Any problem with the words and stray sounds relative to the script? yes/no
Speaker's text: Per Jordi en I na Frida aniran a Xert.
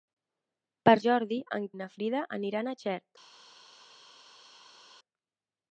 no